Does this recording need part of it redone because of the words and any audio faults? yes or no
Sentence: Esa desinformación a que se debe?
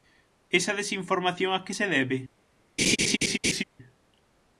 yes